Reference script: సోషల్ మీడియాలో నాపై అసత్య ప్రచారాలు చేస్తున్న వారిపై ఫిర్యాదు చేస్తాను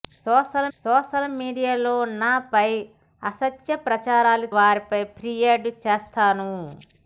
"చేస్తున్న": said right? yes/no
no